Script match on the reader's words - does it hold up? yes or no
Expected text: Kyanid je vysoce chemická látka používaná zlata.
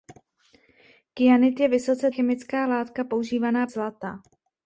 yes